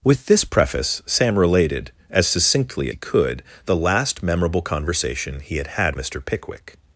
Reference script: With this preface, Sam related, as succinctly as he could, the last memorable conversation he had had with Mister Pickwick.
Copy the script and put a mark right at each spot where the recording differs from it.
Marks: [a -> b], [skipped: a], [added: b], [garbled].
With this preface, Sam related, as succinctly [skipped: as] he could, the last memorable conversation he had had [skipped: with] Mister Pickwick.